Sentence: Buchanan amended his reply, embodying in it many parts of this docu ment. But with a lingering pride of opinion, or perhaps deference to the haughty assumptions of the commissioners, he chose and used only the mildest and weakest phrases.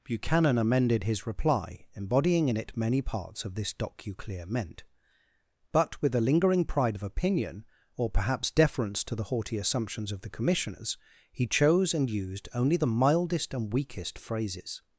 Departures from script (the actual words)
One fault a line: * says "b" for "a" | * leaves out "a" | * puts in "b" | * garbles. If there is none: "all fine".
* says "clear meant" for "ment"